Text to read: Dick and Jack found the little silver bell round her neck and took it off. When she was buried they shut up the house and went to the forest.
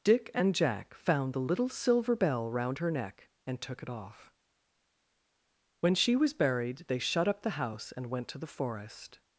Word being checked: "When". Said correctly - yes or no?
yes